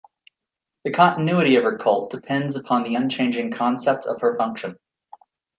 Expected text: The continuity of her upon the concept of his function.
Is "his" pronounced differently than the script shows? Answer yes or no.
yes